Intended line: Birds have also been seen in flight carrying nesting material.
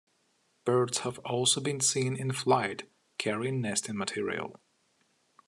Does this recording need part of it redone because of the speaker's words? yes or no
no